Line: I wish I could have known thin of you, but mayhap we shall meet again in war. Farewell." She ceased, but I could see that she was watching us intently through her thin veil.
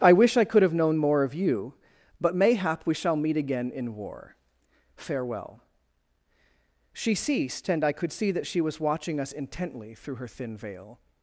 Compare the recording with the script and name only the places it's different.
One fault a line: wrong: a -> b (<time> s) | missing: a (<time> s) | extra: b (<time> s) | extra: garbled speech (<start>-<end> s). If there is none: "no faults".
wrong: thin -> more (1.0 s)
wrong: but -> and (7.7 s)